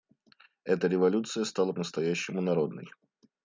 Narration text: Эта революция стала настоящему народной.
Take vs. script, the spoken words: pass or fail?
pass